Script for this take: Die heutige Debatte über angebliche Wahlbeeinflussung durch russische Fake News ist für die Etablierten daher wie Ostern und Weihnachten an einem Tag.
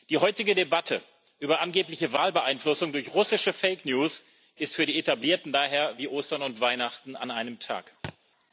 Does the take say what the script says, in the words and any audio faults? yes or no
no